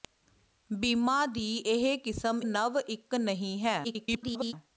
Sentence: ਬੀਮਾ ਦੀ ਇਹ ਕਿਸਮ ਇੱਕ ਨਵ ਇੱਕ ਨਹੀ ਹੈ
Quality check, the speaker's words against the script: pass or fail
fail